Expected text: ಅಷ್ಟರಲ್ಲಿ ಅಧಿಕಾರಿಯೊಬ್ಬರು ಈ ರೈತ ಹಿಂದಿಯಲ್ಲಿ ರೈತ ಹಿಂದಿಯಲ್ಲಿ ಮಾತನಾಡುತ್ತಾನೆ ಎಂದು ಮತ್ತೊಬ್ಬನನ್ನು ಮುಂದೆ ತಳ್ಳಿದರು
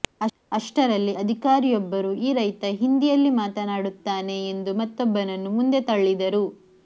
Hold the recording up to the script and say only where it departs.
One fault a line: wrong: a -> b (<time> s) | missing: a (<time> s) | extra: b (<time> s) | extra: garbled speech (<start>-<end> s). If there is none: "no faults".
missing: ರೈತ ಹಿಂದಿಯಲ್ಲಿ (3.3 s)